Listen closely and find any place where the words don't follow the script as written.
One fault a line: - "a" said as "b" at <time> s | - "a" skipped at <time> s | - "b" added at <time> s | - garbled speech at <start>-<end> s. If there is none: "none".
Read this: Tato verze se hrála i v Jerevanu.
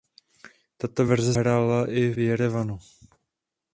- "se" skipped at 1.4 s
- "v" skipped at 2.1 s